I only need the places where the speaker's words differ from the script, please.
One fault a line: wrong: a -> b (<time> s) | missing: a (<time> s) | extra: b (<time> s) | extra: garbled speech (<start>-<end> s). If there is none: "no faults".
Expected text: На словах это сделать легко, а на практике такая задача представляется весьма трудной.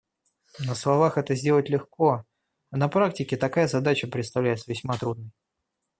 no faults